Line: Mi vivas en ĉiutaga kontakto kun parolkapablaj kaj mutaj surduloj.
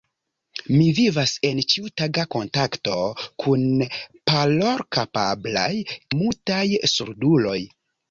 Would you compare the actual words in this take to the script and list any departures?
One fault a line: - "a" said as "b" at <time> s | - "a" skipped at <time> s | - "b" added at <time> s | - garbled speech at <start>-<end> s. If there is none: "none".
- "kaj" skipped at 5.7 s